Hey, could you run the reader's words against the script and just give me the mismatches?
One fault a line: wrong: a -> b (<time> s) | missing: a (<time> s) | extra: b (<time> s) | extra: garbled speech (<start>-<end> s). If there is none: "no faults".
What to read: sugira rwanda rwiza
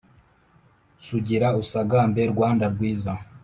extra: usagambe (1.6 s)